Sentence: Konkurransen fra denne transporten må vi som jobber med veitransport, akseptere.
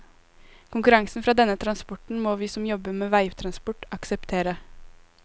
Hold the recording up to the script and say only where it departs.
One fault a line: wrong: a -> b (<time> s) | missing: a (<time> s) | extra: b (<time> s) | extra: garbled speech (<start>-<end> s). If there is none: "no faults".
no faults